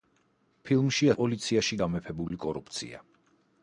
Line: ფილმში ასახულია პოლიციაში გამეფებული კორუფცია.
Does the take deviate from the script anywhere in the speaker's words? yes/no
yes